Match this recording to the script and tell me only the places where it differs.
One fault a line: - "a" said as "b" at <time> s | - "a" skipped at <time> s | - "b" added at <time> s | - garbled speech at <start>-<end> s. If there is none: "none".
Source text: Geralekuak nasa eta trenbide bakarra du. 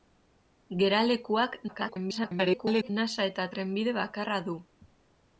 - garbled speech at 1.7-2.9 s